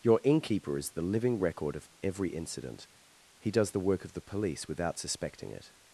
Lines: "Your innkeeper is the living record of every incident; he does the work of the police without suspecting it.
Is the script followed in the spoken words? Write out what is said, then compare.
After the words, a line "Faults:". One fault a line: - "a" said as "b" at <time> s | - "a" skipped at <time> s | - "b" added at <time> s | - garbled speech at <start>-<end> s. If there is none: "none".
"Your innkeeper is the living record of every incident; he does the work of the police without suspecting it.
Faults:
none